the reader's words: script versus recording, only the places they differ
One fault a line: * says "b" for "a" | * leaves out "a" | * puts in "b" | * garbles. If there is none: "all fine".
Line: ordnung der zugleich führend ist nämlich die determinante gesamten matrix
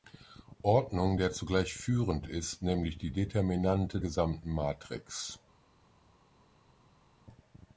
all fine